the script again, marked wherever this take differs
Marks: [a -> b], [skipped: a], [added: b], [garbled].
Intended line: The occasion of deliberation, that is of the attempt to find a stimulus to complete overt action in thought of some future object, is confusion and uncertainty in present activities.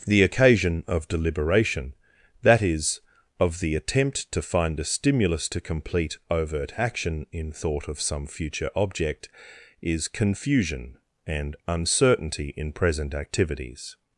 The occasion of deliberation, that is of the attempt to find a stimulus to complete overt action in thought of some future object, is confusion and uncertainty in present activities.